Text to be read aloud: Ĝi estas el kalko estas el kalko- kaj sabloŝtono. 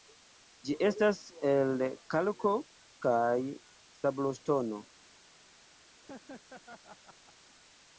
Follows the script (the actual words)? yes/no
no